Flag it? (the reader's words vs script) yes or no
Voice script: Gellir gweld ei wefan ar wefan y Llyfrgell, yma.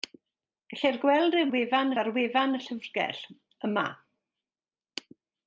no